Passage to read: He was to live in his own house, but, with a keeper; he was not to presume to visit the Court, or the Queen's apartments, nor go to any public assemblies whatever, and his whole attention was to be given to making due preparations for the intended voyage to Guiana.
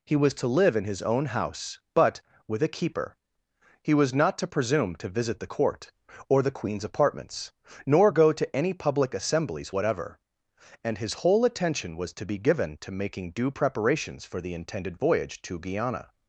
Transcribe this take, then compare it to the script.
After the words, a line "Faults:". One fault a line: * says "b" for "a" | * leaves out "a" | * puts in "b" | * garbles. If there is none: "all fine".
He was to live in his own house, but, with a keeper; he was not to presume to visit the Court, or the Queen's apartments, nor go to any public assemblies whatever, and his whole attention was to be given to making due preparations for the intended voyage to Guiana.
Faults:
all fine